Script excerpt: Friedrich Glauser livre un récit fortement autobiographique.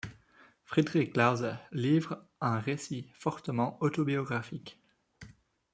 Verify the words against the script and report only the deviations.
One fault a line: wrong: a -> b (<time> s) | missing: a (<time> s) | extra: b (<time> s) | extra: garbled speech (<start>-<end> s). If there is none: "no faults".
no faults